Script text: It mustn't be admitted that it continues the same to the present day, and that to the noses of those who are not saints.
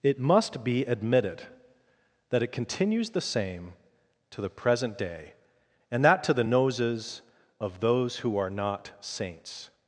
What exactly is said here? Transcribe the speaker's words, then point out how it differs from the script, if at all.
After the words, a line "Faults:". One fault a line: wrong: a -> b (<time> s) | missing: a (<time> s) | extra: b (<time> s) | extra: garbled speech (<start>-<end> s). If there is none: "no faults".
It must be admitted that it continues the same to the present day, and that to the noses of those who are not saints.
Faults:
wrong: mustn't -> must (0.2 s)